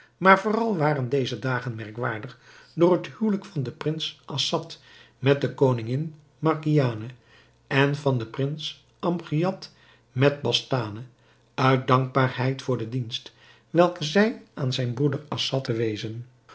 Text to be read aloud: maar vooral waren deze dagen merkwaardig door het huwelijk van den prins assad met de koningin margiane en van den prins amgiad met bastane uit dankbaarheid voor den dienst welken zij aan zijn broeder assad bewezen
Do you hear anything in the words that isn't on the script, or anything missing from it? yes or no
no